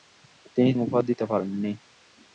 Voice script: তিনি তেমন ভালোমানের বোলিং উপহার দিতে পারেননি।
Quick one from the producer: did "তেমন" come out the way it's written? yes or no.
no